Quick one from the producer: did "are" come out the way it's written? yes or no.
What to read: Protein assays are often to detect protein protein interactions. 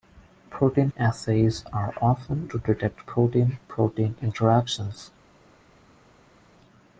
yes